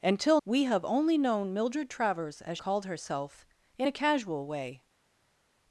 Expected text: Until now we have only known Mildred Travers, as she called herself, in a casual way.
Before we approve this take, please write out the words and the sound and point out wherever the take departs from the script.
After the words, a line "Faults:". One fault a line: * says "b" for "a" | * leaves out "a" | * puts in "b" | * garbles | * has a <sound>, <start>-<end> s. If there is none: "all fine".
Until we have only known Mildred Travers, as called herself, in a casual way.
Faults:
* leaves out "now"
* leaves out "she"